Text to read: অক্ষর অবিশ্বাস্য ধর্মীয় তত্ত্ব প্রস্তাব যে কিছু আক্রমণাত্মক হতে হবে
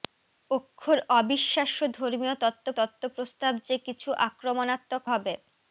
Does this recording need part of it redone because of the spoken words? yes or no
yes